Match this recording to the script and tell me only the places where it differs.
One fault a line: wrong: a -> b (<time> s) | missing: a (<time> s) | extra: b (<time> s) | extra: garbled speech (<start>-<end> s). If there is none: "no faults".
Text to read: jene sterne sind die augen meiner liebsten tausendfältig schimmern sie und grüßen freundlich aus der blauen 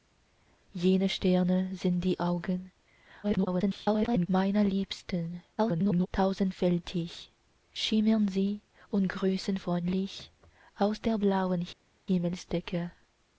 extra: garbled speech (3.2-4.3 s)
extra: garbled speech (5.6-6.1 s)